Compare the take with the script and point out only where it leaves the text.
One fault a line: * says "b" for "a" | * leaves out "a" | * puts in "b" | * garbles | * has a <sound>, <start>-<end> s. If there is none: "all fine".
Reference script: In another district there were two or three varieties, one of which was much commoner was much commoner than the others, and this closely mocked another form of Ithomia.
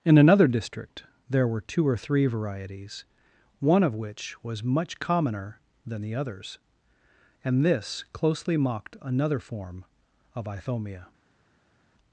* leaves out "was much commoner"